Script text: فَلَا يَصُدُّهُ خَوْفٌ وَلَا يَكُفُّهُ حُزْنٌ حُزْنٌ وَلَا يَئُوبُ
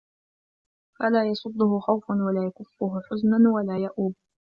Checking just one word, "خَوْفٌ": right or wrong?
right